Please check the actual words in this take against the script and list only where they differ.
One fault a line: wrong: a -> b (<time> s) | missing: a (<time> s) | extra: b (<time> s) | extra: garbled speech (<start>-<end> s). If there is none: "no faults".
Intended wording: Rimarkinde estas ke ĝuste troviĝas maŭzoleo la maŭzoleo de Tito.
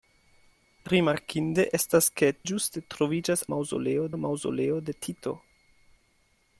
no faults